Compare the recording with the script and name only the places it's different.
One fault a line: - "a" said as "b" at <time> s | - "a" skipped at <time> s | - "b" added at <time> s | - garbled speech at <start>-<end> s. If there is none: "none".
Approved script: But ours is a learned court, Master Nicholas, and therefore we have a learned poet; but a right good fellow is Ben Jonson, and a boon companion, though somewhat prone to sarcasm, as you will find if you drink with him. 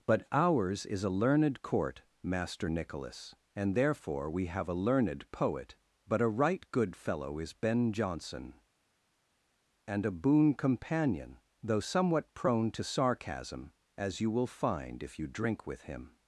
none